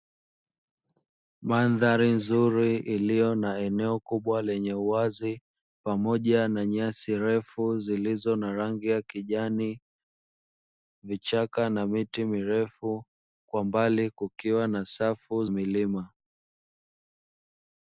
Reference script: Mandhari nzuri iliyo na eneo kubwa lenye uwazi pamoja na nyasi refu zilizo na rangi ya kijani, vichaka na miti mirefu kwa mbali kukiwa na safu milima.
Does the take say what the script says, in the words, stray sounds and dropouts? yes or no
yes